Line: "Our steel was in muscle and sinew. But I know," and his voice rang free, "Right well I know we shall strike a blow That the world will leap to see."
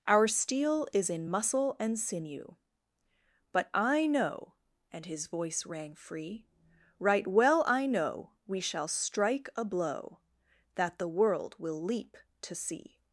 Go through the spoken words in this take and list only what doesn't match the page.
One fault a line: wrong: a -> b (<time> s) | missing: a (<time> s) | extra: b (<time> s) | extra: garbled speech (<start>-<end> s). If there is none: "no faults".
wrong: was -> is (0.9 s)